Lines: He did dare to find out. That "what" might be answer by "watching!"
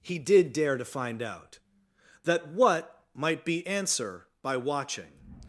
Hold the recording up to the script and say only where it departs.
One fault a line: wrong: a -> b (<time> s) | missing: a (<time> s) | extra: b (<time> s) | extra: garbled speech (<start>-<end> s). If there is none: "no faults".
no faults